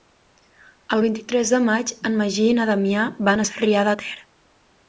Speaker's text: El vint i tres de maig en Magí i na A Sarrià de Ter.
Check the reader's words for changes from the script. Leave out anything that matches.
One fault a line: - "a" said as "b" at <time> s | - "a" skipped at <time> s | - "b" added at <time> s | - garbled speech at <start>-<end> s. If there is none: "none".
- "Damià van" added at 2.7 s